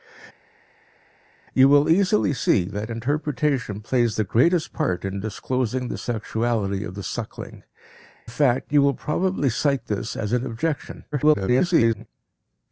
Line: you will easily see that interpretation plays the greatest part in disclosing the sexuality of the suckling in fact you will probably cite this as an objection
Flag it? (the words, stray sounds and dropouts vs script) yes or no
yes